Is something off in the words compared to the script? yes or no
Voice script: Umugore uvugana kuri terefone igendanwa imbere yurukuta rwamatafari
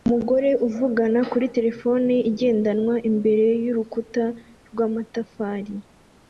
no